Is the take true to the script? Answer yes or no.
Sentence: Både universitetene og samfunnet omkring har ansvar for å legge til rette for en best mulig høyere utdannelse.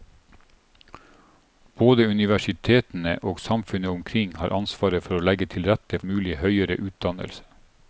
no